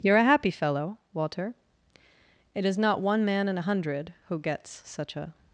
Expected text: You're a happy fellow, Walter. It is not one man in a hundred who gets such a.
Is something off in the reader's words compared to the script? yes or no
no